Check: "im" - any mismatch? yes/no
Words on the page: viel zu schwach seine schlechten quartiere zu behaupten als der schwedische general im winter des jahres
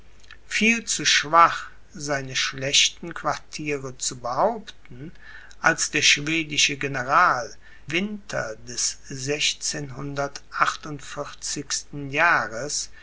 yes